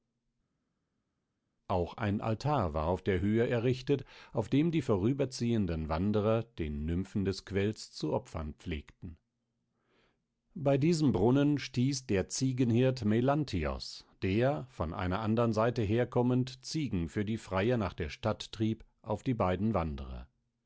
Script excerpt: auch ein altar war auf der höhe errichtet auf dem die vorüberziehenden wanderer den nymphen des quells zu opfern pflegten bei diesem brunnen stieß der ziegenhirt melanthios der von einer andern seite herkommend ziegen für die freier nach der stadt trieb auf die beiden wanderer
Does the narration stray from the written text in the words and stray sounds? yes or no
no